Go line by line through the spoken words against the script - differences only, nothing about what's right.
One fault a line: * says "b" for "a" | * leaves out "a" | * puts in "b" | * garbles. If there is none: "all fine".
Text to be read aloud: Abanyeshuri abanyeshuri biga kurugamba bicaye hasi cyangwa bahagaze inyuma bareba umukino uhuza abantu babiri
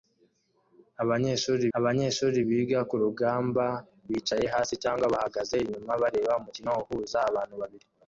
all fine